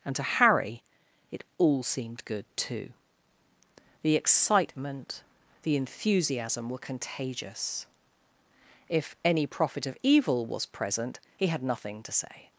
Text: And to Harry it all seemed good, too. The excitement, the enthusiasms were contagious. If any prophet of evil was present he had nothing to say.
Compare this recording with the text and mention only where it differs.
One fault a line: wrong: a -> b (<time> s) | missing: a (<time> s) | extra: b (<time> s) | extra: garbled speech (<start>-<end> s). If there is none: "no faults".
wrong: enthusiasms -> enthusiasm (5.8 s)